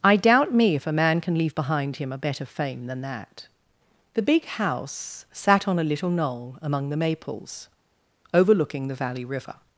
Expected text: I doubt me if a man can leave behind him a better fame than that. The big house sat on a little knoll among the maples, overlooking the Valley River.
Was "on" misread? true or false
false